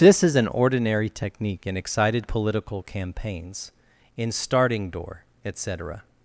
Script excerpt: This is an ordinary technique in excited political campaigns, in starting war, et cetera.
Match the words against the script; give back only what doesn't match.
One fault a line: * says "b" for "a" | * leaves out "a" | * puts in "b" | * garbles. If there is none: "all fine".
* says "door" for "war"